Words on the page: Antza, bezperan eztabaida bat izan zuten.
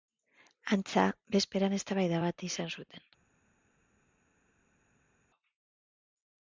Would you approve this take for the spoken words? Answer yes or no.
yes